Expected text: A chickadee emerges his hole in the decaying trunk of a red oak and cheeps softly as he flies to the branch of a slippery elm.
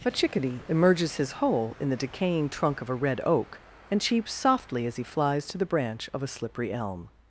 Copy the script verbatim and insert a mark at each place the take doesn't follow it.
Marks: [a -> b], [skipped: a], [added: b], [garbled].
A chickadee emerges his hole in the decaying trunk of a red oak and cheeps softly as he flies to the branch of a slippery elm.